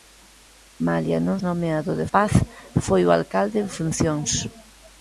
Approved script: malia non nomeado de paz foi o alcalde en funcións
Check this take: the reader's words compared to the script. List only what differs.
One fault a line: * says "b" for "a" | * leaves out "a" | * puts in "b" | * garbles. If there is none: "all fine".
all fine